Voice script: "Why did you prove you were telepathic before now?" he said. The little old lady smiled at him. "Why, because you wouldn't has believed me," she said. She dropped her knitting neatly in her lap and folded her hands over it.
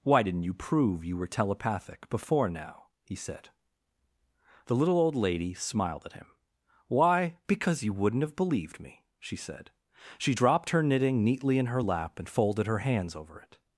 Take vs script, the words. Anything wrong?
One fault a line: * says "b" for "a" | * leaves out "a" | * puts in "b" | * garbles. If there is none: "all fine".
* says "didn't" for "did"
* says "have" for "has"